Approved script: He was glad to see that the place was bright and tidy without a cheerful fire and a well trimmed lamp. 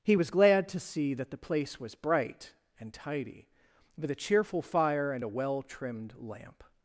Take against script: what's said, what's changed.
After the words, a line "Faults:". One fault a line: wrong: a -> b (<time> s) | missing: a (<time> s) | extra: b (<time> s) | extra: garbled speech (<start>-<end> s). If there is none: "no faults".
He was glad to see that the place was bright and tidy with a cheerful fire and a well trimmed lamp.
Faults:
wrong: without -> with (4.0 s)